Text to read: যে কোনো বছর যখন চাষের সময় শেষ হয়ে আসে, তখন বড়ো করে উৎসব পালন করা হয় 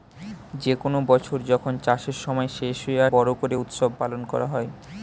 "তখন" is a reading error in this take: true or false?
true